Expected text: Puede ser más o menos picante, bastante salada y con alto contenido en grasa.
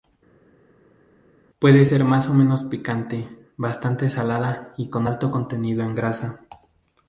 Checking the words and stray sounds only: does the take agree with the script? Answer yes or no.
yes